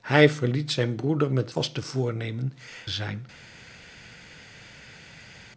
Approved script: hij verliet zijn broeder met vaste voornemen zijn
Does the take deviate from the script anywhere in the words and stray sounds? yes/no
no